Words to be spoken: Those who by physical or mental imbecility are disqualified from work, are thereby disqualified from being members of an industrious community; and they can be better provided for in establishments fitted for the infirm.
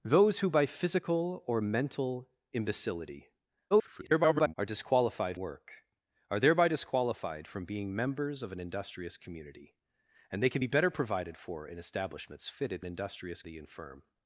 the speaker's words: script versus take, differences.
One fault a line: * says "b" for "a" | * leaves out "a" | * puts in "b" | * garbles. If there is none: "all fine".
* garbles
* leaves out "from"
* says "industrious" for "for"